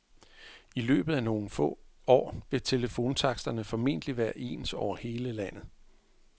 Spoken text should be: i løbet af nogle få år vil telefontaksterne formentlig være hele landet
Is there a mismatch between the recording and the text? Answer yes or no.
yes